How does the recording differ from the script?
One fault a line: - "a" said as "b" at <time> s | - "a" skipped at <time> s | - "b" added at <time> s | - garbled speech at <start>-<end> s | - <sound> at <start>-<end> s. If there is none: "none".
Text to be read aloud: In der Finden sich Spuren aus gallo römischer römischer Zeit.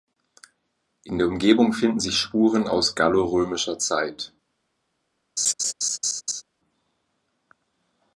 - "Umgebung" added at 1.3 s
- "römischer" skipped at 3.8 s
- laugh at 5.4-6.4 s